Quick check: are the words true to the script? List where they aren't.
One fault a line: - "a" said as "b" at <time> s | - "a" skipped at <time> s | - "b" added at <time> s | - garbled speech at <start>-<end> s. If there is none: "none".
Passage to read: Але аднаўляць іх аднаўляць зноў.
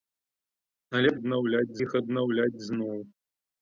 none